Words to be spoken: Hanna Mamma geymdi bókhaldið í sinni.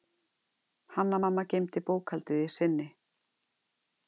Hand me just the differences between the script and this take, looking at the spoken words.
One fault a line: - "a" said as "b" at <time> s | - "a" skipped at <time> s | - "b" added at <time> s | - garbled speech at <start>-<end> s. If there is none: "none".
none